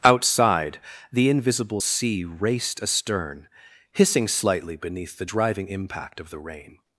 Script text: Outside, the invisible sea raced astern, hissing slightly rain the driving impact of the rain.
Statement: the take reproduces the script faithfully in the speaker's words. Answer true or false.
false